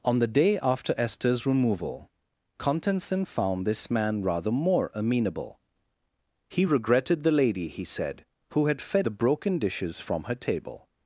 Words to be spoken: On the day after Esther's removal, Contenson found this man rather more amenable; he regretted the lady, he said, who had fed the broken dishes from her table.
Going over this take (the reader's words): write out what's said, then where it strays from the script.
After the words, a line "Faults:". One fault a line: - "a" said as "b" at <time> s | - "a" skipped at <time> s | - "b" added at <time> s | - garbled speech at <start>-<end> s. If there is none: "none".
On the day after Esther's removal, Contenson found this man rather more amenable; he regretted the lady, he said, who had fed the broken dishes from her table.
Faults:
none